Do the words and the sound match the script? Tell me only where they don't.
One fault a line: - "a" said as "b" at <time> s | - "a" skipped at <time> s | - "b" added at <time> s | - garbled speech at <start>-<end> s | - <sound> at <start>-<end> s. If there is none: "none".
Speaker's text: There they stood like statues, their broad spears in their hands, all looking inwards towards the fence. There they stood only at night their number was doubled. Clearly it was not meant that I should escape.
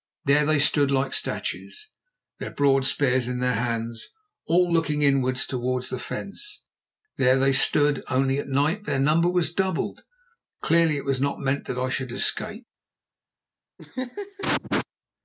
- laugh at 13.8-14.9 s